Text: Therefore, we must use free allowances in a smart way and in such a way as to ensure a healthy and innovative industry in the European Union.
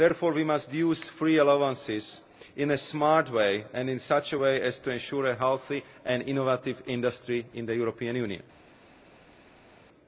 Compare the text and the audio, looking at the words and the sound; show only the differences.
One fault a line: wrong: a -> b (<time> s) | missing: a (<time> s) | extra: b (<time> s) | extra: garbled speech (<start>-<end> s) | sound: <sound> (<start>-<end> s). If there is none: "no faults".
no faults